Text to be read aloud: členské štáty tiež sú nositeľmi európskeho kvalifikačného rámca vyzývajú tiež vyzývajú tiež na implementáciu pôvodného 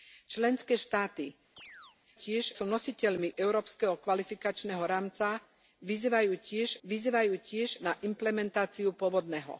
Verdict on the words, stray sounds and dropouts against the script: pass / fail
fail